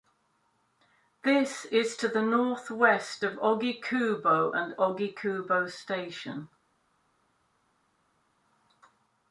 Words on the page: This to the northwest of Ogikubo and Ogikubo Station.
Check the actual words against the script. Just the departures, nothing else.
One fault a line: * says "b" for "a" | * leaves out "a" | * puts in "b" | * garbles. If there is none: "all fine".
* puts in "is"